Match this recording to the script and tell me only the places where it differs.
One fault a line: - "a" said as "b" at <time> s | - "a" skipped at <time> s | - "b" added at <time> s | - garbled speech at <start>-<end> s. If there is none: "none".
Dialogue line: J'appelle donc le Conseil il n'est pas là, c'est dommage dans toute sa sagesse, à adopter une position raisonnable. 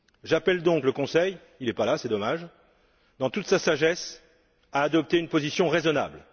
none